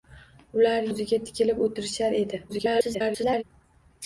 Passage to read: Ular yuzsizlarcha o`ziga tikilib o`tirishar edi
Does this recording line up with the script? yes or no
no